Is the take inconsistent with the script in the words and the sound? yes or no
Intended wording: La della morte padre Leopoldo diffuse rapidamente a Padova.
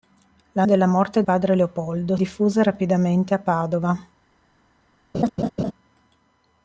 yes